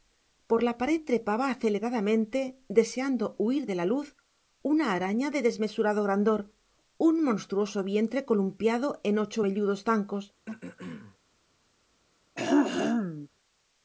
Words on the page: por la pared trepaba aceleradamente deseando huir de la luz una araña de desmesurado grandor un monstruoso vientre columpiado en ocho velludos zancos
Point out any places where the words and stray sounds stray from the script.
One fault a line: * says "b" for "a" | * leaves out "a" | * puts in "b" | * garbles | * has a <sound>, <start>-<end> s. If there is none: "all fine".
* has a throat clearing, 10.5-11.2 s
* has a throat clearing, 12.4-13.3 s